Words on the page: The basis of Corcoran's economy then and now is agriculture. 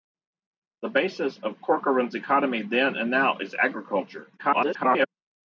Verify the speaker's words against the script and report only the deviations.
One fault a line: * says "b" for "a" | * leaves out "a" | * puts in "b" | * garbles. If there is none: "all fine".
* garbles